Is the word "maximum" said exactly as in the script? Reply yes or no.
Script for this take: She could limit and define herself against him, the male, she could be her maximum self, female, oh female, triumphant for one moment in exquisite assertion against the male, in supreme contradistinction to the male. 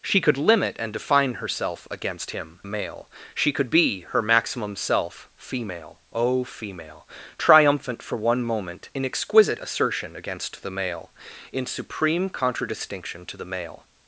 yes